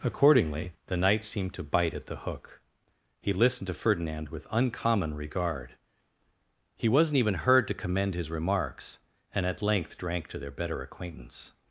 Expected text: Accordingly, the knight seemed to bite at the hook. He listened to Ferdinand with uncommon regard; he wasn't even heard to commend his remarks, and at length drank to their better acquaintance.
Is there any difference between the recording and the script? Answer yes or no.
no